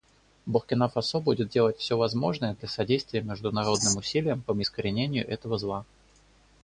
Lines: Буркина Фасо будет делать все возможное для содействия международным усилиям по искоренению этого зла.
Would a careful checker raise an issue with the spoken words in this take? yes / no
no